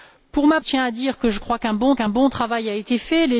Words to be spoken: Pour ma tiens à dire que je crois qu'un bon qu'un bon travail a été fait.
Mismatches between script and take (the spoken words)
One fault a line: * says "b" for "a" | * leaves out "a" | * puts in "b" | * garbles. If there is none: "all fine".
all fine